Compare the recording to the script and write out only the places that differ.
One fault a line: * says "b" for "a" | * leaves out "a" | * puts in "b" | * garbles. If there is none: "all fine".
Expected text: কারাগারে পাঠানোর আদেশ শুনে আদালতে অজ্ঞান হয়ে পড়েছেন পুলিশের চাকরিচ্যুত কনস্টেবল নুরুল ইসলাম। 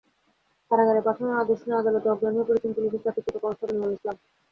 all fine